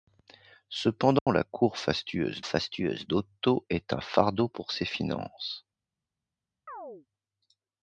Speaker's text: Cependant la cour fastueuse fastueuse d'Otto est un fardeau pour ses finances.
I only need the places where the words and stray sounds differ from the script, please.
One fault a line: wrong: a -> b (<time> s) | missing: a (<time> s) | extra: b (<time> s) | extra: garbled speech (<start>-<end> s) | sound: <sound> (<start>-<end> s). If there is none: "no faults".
sound: dropout (1.2-1.3 s)
sound: chirp (6.7-7.1 s)